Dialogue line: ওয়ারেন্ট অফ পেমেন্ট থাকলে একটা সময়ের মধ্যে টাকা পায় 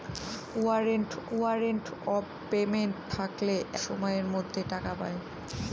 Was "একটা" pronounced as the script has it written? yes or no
no